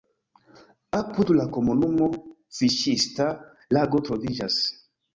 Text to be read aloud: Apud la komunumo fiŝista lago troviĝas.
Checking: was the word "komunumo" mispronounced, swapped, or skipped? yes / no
no